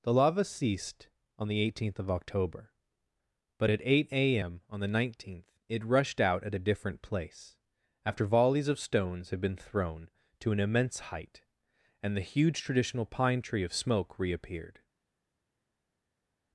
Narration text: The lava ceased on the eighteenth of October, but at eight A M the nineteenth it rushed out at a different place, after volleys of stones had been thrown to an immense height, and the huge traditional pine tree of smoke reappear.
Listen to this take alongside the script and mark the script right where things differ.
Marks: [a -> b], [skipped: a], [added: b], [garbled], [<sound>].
The lava ceased on the eighteenth of October, but at eight A M [added: on] the nineteenth it rushed out at a different place, after volleys of stones had been thrown to an immense height, and the huge traditional pine tree of smoke [reappear. -> reappeared]